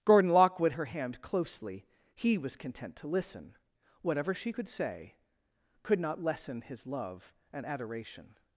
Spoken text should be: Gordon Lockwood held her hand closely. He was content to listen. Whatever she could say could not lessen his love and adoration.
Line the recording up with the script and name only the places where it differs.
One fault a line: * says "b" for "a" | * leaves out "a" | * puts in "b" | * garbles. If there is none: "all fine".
* leaves out "held"